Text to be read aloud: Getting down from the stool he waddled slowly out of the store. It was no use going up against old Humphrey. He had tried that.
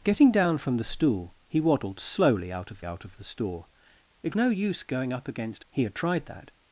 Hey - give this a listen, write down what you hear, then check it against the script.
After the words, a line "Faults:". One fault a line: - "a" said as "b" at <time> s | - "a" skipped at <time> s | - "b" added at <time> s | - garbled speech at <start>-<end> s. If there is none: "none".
Getting down from the stool he waddled slowly out of out of the store. It no use going up against. He had tried that.
Faults:
- "out of" added at 2.8 s
- "was" skipped at 4.3 s
- "old Humphrey" skipped at 5.7 s